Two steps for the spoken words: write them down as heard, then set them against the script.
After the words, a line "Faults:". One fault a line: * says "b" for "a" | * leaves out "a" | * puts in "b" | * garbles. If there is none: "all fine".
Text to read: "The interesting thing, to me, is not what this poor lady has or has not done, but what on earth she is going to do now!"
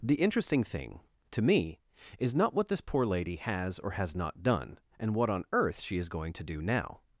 "The interesting thing, to me, is not what this poor lady has or has not done, and what on earth she is going to do now!"
Faults:
* says "and" for "but"